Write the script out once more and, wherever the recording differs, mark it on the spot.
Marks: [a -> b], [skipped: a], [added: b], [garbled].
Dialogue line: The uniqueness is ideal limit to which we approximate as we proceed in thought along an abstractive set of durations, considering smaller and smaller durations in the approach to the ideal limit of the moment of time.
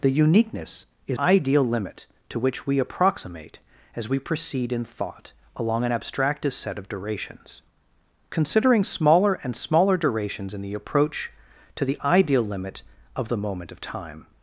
The uniqueness is ideal limit to which we approximate as we proceed in thought along an abstractive set of durations, considering smaller and smaller durations in the approach to the ideal limit of the moment of time.